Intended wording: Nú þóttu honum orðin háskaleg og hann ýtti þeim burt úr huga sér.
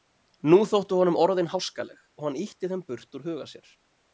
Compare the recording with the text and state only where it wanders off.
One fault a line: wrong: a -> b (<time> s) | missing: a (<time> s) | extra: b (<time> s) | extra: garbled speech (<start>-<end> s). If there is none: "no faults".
no faults